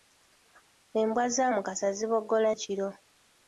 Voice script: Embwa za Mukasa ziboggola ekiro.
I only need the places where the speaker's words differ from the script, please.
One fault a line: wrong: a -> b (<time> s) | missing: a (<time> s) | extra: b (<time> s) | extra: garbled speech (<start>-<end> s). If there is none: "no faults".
no faults